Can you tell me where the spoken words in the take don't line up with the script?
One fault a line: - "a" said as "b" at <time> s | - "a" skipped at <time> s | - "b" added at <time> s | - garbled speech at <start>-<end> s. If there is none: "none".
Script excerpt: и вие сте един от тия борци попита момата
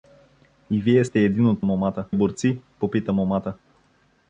- "тия" said as "момата" at 1.6 s